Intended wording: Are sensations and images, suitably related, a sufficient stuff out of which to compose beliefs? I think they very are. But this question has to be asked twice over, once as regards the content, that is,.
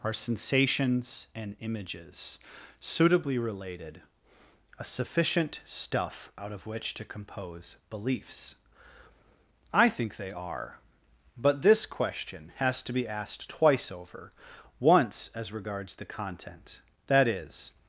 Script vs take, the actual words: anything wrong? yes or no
yes